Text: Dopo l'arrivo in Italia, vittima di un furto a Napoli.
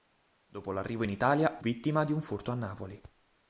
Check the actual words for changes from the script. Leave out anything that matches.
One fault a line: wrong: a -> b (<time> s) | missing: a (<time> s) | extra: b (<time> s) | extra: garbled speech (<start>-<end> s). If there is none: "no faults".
no faults